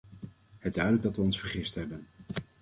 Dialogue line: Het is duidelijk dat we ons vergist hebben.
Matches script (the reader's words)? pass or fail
fail